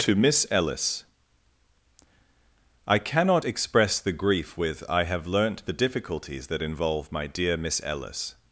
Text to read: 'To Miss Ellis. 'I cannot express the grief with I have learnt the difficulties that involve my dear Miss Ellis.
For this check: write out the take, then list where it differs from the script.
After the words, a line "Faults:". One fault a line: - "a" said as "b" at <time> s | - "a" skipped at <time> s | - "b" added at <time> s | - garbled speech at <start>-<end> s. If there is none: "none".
'To Miss Ellis. 'I cannot express the grief with I have learnt the difficulties that involve my dear Miss Ellis.
Faults:
none